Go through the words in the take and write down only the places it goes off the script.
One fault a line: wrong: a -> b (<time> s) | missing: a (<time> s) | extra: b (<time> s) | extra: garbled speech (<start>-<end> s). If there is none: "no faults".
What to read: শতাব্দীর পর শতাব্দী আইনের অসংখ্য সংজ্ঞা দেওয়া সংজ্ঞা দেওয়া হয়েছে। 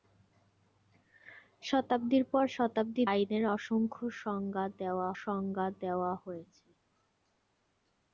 no faults